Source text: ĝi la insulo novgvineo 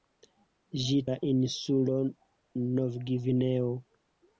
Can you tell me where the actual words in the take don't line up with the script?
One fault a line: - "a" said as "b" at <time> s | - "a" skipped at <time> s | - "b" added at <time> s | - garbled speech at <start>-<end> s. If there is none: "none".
none